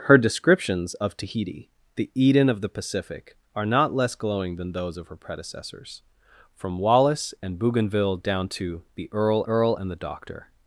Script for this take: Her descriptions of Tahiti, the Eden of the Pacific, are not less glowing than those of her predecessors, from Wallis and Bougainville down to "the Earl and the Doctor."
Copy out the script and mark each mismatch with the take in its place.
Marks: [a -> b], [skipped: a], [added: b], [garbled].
Her descriptions of Tahiti, the Eden of the Pacific, are not less glowing than those of her predecessors, from Wallis and Bougainville down to "the Earl [added: Earl] and the Doctor."